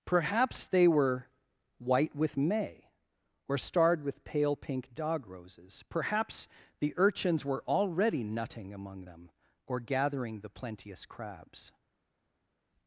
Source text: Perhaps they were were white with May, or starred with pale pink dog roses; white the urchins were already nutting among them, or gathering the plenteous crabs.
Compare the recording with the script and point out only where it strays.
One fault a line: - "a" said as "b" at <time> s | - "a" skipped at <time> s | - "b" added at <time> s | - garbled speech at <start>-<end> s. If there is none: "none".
- "were" skipped at 1.3 s
- "white" said as "perhaps" at 5.9 s